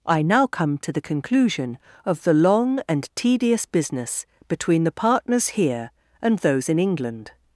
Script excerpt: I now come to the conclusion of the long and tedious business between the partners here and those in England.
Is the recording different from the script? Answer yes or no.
no